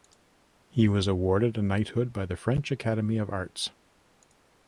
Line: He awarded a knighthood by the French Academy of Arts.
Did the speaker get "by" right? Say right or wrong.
right